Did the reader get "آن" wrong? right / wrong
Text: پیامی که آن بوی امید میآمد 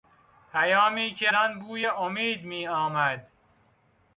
right